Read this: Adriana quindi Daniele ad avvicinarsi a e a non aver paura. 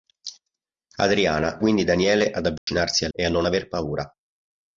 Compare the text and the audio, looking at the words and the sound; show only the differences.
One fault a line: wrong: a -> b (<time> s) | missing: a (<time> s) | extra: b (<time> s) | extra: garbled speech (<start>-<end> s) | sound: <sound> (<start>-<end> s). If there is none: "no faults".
sound: dropout (2.6-2.7 s)